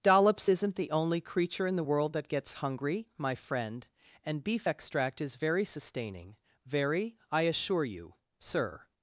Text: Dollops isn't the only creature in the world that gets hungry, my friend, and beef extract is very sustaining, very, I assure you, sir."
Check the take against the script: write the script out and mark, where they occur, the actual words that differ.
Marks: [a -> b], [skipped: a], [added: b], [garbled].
Dollops isn't the only creature in the world that gets hungry, my friend, and beef extract is very sustaining, very, I assure you, sir."